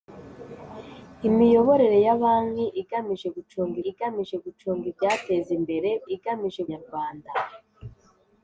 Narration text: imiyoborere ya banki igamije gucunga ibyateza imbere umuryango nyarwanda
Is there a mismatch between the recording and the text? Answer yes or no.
yes